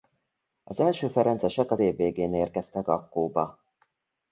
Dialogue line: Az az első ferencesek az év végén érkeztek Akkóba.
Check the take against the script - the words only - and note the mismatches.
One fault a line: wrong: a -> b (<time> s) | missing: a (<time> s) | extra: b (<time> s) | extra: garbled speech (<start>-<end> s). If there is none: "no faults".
missing: az (0.8 s)